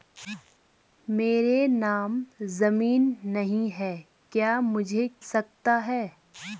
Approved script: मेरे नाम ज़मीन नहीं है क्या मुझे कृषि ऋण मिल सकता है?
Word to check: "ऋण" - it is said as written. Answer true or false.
false